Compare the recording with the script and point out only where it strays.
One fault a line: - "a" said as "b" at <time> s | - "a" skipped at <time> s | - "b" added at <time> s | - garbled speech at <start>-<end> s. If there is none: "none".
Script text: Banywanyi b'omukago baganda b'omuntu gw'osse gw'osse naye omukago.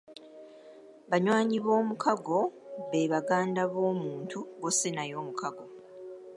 - "be" added at 2.9 s
- "gw'osse" skipped at 4.9 s